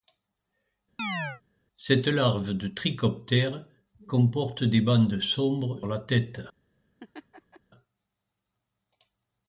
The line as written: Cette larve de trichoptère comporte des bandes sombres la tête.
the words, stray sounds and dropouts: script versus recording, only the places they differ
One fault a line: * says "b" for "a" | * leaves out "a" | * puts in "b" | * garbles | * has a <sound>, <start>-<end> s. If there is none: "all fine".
* has a chirp, 1.0-1.4 s
* has a laugh, 7.0-7.6 s